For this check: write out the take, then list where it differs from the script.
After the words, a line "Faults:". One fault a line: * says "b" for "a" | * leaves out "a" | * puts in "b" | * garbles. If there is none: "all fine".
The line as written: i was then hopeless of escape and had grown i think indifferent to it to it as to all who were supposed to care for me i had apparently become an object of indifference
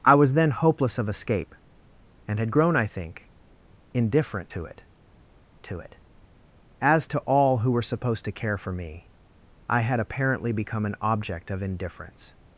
i was then hopeless of escape and had grown i think indifferent to it to it as to all who were supposed to care for me i had apparently become an object of indifference
Faults:
all fine